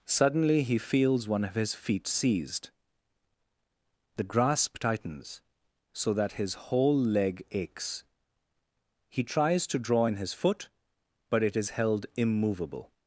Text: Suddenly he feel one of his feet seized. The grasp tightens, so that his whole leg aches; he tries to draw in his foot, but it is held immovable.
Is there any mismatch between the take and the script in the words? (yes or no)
yes